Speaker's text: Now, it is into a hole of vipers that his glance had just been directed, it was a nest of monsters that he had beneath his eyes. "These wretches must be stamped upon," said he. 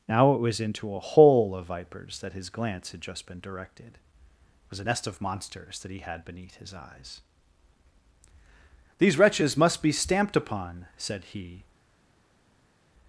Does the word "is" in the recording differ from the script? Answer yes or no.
yes